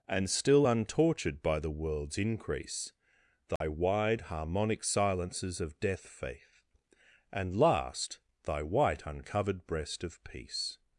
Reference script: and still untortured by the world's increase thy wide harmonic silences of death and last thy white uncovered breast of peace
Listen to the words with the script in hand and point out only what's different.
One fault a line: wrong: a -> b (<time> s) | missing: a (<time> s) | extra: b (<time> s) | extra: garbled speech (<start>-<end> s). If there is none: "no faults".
extra: faith (6.0 s)